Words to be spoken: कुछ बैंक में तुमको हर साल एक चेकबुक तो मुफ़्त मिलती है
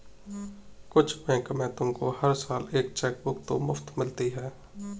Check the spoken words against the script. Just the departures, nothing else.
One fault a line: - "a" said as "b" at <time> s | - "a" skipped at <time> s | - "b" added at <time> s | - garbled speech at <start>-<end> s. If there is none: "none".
none